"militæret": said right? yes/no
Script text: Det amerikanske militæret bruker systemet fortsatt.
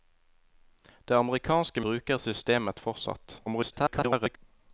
no